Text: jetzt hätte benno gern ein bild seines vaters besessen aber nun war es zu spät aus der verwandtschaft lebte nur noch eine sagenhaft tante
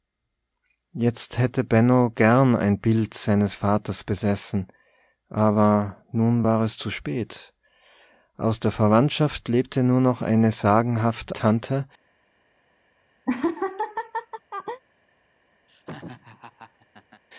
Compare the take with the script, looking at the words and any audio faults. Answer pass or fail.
fail